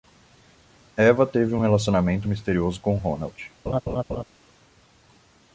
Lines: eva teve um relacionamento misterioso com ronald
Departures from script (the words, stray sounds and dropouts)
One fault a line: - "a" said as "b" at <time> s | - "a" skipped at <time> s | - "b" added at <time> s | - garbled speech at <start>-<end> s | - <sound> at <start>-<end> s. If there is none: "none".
- laugh at 3.7-4.2 s